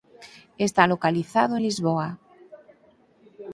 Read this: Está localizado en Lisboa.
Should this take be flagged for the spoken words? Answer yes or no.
no